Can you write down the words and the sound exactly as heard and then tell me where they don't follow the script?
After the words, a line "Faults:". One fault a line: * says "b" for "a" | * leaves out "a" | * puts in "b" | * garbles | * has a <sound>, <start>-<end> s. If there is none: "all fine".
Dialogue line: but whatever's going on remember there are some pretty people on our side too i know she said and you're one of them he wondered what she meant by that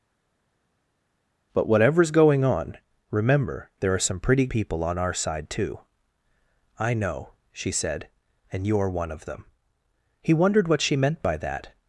but whatever's going on remember there are some pretty people on our side too i know she said and you're one of them he wondered what she meant by that
Faults:
all fine